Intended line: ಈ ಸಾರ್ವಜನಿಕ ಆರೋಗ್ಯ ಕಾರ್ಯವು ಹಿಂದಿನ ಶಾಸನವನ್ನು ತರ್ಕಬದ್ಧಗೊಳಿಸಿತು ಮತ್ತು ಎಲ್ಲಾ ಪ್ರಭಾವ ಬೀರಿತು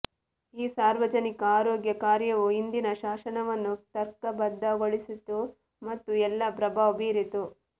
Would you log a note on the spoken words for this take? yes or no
no